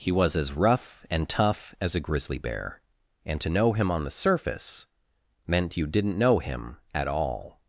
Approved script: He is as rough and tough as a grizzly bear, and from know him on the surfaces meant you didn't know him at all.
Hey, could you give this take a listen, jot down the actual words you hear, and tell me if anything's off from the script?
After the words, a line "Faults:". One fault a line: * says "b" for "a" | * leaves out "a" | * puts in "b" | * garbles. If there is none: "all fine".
He was as rough and tough as a grizzly bear, and to know him on the surface meant you didn't know him at all.
Faults:
* says "was" for "is"
* says "to" for "from"
* says "surface" for "surfaces"